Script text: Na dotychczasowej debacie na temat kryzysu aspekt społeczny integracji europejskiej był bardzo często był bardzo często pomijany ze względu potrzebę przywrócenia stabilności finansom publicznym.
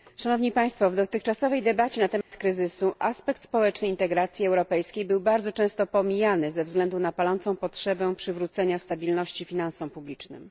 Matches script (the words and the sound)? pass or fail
fail